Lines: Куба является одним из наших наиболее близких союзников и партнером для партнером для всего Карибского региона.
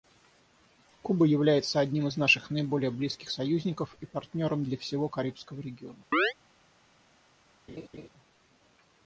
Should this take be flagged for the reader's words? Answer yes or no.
yes